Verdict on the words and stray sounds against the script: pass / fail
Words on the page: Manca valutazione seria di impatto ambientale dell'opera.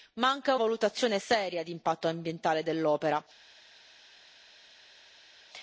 pass